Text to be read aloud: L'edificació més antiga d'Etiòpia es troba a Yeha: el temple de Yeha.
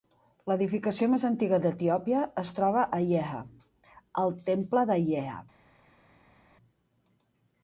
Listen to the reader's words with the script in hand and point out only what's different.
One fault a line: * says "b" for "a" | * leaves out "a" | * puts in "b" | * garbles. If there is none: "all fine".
all fine